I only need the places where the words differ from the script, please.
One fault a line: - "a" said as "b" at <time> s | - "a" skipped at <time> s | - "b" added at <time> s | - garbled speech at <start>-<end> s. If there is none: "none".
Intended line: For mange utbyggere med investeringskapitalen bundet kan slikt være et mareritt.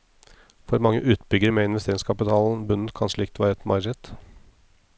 none